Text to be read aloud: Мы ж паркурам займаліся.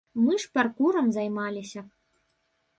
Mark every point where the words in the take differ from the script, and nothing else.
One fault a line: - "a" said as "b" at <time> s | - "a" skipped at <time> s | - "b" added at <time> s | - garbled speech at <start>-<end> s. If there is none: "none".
none